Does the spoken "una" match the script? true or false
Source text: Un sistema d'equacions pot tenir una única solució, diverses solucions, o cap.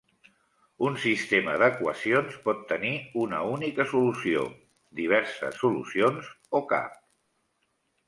true